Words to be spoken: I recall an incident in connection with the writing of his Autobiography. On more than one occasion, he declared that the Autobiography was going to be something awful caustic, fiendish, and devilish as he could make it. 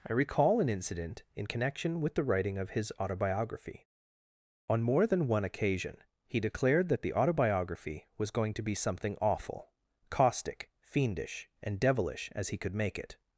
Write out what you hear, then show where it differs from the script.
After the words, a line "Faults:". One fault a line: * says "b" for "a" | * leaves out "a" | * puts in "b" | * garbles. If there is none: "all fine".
I recall an incident in connection with the writing of his Autobiography. On more than one occasion, he declared that the Autobiography was going to be something awful caustic, fiendish, and devilish as he could make it.
Faults:
all fine